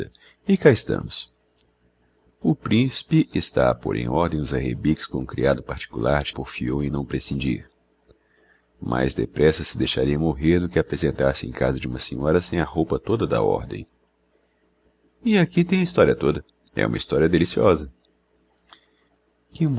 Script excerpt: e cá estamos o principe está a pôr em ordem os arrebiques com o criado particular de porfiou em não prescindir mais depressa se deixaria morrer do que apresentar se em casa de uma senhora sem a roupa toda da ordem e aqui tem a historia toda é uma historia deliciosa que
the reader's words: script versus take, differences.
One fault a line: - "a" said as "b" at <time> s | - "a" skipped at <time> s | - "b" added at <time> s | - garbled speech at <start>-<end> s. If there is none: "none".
none